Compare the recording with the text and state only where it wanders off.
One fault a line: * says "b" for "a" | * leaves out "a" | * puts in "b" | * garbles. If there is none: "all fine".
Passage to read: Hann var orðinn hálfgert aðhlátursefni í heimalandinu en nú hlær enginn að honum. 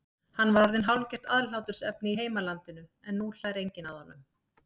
all fine